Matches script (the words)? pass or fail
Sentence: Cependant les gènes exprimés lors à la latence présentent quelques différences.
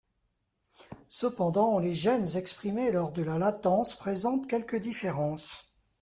fail